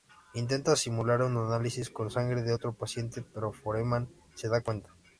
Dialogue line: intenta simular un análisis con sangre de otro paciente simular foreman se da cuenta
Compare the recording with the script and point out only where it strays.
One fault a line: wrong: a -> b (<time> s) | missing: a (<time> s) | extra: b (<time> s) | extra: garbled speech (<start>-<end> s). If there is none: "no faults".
wrong: simular -> pero (3.2 s)